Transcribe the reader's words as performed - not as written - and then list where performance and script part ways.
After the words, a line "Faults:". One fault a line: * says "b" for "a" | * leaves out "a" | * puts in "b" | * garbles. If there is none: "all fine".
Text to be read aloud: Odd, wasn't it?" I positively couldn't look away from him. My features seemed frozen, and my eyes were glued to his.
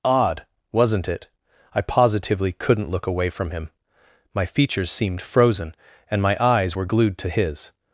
Odd, wasn't it?" I positively couldn't look away from him. My features seemed frozen, and my eyes were glued to his.
Faults:
all fine